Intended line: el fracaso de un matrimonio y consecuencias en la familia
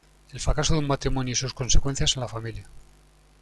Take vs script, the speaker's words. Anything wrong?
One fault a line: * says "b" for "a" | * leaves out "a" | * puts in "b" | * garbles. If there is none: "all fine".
* puts in "sus"